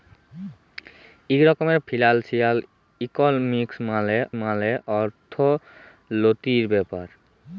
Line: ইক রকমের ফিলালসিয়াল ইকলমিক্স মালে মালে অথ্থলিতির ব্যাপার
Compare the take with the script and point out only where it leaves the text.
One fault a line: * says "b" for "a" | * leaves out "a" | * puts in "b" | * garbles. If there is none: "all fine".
all fine